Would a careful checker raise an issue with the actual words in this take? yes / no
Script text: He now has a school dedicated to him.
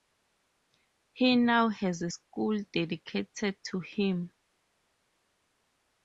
no